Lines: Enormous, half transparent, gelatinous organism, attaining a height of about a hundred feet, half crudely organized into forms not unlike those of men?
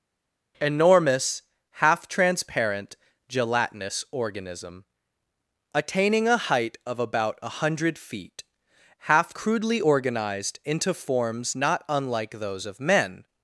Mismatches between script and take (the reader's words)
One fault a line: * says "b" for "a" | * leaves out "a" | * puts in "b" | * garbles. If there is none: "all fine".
all fine